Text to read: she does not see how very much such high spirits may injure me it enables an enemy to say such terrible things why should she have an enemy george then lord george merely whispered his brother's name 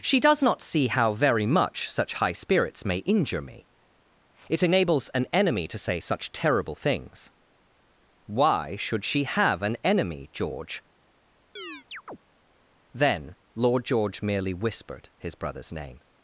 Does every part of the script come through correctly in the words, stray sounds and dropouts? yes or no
no